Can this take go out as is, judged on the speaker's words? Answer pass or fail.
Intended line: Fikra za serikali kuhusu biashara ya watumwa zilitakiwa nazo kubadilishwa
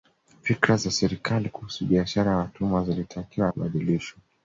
fail